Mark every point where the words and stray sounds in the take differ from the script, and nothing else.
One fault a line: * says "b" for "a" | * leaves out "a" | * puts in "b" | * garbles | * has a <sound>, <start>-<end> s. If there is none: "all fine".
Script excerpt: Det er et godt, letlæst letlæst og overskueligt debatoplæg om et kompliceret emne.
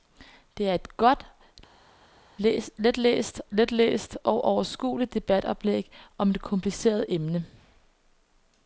all fine